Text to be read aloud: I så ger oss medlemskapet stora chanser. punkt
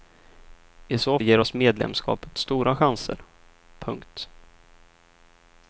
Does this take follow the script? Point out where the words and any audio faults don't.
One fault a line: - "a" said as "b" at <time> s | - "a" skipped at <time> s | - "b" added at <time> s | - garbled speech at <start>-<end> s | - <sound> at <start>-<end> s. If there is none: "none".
none